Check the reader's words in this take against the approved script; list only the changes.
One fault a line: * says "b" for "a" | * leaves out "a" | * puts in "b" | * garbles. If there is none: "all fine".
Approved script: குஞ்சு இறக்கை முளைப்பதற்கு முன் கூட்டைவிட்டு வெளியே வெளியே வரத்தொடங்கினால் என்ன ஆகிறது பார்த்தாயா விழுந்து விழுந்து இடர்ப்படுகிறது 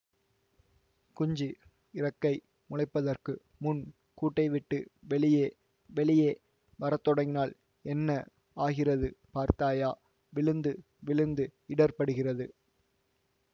all fine